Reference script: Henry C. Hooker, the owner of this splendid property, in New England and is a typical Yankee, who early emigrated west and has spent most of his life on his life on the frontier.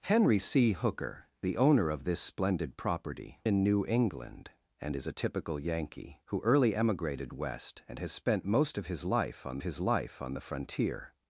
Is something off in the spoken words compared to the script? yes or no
no